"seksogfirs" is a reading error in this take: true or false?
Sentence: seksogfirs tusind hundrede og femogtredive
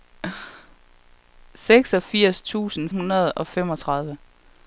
false